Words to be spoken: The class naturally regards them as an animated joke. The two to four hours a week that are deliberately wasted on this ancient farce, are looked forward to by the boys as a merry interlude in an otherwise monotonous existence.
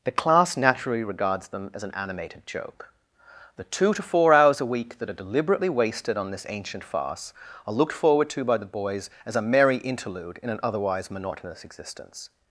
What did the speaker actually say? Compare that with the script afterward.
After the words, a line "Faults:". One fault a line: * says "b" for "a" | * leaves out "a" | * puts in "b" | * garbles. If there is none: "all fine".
The class naturally regards them as an animated joke. The two to four hours a week that are deliberately wasted on this ancient farce, are looked forward to by the boys as a merry interlude in an otherwise monotonous existence.
Faults:
all fine